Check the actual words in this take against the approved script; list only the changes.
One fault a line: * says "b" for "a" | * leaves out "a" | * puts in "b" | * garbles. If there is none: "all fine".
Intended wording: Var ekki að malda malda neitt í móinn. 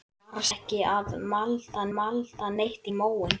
all fine